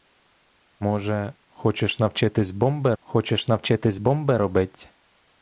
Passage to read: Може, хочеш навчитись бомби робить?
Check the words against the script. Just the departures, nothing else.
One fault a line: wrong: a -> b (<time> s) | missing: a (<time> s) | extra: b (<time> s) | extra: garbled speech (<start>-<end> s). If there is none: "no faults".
extra: хочеш навчитись бомби (3.0 s)